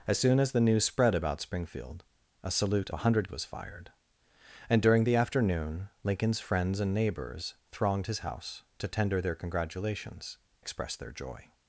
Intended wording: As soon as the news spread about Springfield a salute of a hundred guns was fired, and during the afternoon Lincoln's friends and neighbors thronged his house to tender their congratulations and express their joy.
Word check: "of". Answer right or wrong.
wrong